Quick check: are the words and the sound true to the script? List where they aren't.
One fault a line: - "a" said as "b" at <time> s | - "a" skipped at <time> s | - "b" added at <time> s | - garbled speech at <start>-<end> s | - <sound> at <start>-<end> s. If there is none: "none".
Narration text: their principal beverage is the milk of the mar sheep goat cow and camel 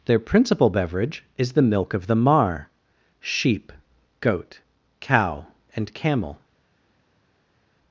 none